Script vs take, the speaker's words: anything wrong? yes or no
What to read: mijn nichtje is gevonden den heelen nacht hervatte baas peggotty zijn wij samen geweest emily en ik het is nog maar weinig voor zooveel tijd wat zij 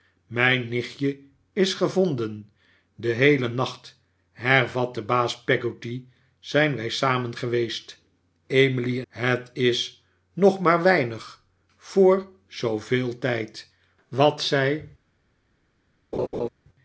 yes